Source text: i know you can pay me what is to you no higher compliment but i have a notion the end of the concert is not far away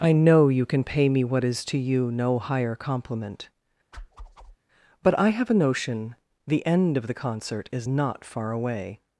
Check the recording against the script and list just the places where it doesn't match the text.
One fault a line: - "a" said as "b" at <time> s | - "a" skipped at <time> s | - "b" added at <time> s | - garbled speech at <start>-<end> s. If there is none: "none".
none